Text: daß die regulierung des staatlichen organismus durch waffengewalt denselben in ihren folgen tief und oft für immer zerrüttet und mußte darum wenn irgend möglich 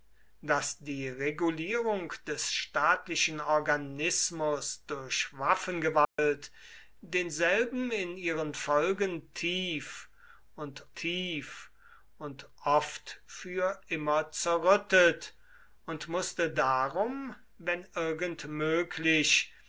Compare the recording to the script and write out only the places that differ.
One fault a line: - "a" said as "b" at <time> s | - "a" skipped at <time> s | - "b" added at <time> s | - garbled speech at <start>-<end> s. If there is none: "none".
- "tief und" added at 10.9 s